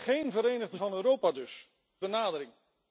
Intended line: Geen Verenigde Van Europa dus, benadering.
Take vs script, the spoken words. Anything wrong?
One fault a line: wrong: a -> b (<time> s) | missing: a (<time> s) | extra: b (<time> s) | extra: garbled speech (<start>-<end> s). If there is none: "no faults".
no faults